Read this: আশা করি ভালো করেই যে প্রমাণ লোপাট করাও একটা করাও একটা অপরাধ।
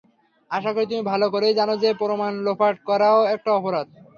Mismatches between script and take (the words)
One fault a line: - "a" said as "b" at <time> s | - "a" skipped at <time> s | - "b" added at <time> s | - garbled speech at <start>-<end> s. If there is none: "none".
- "তুমি" added at 0.9 s
- "জানো" added at 1.6 s
- "করাও একটা" skipped at 3.5 s